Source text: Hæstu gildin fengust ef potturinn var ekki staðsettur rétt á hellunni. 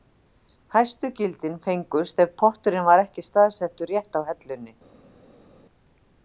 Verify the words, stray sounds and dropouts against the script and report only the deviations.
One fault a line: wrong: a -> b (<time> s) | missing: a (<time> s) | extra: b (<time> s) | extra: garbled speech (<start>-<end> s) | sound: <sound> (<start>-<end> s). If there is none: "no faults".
no faults